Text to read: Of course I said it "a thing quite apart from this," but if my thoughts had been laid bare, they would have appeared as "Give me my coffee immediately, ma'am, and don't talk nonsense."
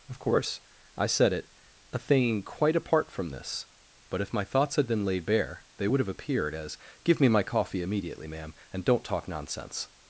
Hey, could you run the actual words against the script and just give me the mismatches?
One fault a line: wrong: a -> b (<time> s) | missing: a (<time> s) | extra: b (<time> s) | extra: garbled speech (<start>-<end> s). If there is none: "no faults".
no faults